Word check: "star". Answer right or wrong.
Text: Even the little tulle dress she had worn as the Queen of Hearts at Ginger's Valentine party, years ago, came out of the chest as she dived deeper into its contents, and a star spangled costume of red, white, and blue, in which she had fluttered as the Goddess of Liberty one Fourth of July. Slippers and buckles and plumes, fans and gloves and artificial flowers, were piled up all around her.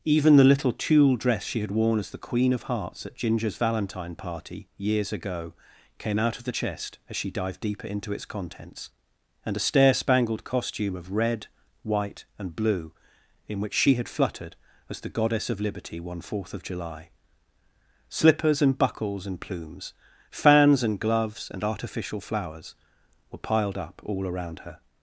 wrong